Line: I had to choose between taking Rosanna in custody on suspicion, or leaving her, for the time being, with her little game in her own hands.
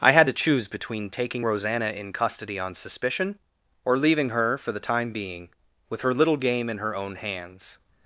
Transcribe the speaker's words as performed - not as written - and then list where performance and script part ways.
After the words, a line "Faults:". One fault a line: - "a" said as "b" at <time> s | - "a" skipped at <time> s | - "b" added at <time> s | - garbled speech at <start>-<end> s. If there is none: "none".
I had to choose between taking Rosanna in custody on suspicion, or leaving her, for the time being, with her little game in her own hands.
Faults:
none